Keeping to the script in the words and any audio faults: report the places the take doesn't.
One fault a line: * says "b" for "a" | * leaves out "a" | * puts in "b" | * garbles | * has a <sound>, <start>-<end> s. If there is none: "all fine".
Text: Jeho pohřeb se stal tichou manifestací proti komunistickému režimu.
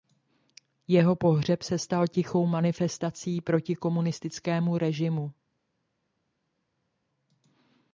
all fine